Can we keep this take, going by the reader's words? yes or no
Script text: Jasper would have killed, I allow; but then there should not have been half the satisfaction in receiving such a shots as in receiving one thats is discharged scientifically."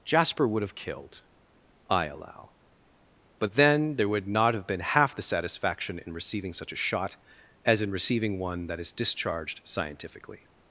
no